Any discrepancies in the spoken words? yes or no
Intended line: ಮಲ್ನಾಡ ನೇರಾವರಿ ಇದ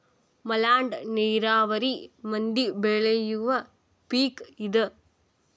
yes